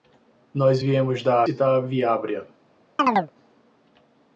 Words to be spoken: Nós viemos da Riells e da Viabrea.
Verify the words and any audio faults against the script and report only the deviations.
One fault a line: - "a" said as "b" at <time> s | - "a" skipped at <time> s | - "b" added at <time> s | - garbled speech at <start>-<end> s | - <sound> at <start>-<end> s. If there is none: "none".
- "Riells" skipped at 1.4 s
- chirp at 3.0-3.3 s